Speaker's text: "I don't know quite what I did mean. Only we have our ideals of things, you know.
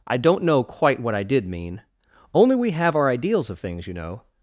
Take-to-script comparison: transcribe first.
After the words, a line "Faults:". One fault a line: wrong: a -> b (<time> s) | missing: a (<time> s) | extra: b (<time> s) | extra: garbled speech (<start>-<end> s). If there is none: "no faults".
"I don't know quite what I did mean. Only we have our ideals of things, you know.
Faults:
no faults